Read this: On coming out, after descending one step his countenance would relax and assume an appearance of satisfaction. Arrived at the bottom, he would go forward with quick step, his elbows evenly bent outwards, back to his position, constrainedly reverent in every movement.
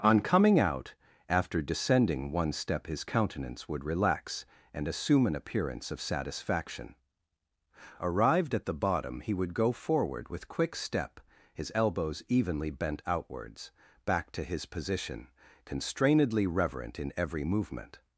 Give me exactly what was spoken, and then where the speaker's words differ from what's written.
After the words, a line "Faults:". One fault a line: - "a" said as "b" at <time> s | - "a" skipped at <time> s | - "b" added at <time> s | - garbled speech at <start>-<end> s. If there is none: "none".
On coming out, after descending one step his countenance would relax and assume an appearance of satisfaction. Arrived at the bottom, he would go forward with quick step, his elbows evenly bent outwards, back to his position, constrainedly reverent in every movement.
Faults:
none